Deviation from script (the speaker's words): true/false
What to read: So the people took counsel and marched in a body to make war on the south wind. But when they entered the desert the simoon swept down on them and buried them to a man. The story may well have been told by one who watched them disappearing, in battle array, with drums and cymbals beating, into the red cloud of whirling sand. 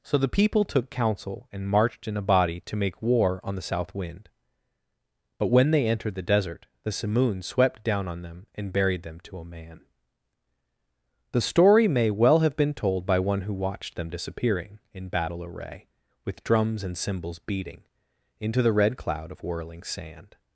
false